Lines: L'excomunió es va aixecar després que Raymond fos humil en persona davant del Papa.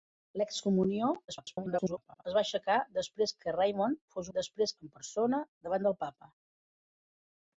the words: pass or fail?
fail